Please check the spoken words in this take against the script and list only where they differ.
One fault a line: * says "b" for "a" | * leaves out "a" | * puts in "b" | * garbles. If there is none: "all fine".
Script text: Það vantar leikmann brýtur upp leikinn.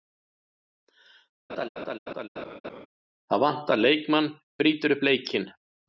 all fine